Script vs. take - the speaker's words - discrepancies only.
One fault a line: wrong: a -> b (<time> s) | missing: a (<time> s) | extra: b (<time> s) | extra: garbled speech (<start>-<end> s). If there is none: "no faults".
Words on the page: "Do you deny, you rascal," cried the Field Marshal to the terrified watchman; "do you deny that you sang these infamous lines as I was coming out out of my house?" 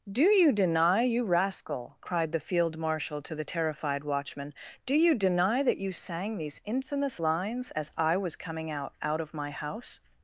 no faults